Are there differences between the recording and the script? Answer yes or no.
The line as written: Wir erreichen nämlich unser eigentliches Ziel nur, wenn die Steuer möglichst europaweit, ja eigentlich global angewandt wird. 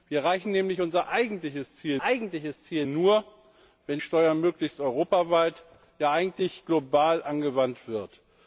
yes